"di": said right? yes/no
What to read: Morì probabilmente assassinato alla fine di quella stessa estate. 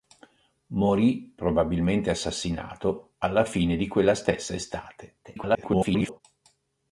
yes